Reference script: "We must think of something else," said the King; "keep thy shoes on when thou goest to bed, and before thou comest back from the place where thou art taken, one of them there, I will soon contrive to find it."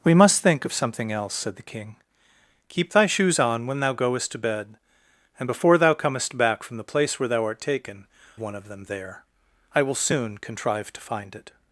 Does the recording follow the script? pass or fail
pass